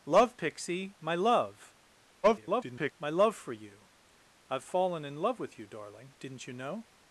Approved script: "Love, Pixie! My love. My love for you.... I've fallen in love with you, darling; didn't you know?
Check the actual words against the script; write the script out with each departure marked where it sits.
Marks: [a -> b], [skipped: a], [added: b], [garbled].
"Love, Pixie! My love. [garbled] My love for you.... I've fallen in love with you, darling; didn't you know?